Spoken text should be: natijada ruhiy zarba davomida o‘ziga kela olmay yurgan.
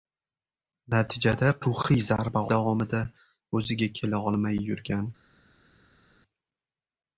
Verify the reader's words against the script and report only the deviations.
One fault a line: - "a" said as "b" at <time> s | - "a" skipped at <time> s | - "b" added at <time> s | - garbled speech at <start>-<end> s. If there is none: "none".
none